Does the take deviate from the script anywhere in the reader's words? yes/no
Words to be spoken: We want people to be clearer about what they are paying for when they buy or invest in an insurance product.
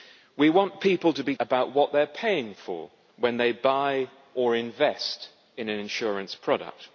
yes